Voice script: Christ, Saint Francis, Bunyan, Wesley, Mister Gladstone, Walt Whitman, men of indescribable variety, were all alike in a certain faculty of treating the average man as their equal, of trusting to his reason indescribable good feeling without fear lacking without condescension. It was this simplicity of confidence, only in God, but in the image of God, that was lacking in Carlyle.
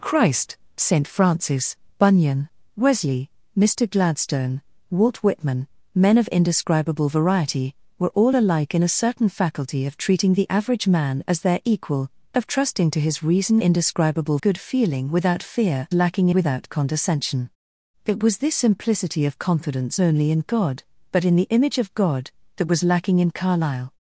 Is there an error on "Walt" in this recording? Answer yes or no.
no